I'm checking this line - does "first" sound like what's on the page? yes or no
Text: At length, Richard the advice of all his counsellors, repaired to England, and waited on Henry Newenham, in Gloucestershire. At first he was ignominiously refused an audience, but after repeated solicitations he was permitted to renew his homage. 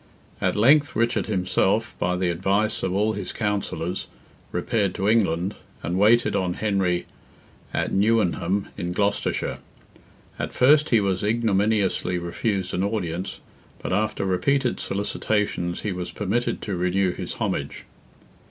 yes